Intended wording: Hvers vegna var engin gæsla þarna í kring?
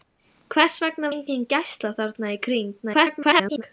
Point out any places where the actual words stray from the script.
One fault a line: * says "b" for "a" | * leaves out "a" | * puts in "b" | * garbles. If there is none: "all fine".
* leaves out "var"
* garbles